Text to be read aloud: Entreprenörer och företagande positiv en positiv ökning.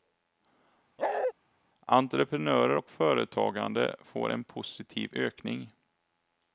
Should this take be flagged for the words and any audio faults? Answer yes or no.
yes